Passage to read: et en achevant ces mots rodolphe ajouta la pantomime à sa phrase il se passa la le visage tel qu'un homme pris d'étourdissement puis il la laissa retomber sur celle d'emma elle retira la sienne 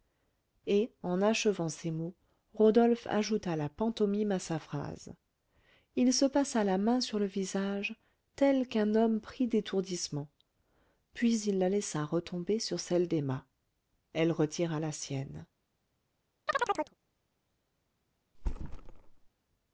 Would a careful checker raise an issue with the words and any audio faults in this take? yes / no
yes